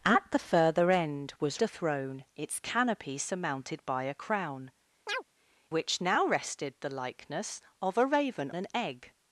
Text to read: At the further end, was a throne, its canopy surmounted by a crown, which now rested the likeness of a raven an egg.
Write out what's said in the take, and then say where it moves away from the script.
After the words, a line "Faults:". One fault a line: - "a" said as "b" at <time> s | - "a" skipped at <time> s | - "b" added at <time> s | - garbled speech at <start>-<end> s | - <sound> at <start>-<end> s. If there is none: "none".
At the further end, was a throne, its canopy surmounted by a crown, which now rested the likeness of a raven an egg.
Faults:
- chirp at 5.1-5.2 s